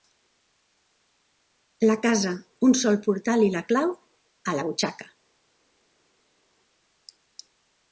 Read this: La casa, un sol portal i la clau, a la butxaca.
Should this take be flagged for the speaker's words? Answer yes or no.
no